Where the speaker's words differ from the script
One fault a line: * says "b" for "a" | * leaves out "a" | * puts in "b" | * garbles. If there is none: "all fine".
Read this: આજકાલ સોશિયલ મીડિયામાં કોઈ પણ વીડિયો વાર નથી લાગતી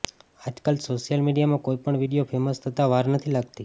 * puts in "ફેમસ થતા"